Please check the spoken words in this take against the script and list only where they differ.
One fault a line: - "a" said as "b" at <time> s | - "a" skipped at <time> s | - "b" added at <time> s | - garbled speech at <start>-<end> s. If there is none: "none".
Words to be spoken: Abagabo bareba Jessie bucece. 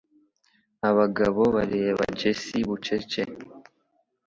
none